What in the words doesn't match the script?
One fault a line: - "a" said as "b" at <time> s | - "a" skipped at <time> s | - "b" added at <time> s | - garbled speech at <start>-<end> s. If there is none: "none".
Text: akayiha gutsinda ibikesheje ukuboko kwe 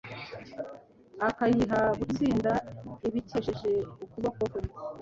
none